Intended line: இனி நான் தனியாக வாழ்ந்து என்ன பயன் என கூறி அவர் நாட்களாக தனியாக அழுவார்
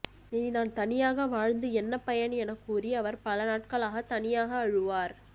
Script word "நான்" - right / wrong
right